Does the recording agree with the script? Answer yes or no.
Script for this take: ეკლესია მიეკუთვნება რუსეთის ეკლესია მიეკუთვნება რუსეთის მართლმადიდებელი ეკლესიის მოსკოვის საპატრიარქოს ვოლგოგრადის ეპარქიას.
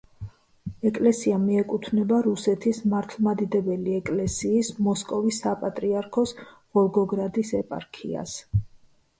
no